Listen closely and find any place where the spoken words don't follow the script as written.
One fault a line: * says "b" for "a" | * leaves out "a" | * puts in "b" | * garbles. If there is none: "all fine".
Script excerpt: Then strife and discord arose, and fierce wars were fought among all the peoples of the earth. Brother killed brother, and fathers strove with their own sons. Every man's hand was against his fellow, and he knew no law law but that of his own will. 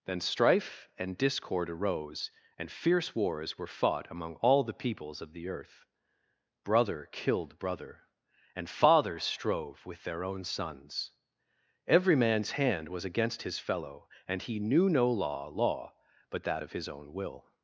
all fine